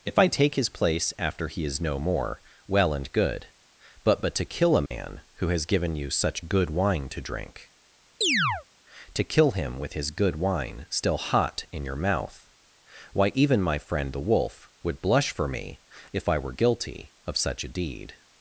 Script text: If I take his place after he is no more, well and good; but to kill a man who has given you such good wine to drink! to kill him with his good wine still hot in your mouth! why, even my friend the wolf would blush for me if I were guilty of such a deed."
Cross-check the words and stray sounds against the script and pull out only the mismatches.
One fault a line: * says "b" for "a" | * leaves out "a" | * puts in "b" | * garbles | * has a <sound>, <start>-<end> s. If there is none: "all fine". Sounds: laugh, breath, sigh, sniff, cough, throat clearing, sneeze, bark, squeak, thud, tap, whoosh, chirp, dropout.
* puts in "but"
* has a dropout, 4.9-4.9 s
* has a chirp, 8.2-8.6 s